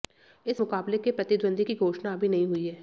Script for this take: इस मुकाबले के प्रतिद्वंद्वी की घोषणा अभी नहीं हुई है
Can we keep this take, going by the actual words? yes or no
yes